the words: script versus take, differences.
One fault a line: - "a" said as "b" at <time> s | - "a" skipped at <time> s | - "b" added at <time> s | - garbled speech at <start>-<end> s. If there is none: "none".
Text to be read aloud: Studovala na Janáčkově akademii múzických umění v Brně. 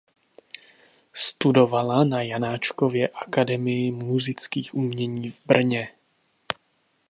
none